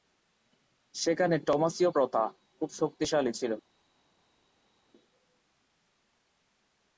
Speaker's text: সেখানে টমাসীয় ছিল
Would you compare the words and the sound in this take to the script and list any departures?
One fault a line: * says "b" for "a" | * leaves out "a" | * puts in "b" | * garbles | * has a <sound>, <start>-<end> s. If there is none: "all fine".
* puts in "প্রথা খুব শক্তিশালী"